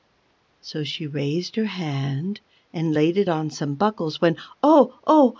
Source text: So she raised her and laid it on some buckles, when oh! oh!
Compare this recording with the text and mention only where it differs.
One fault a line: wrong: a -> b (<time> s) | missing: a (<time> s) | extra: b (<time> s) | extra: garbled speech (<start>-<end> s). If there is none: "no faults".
extra: hand (1.6 s)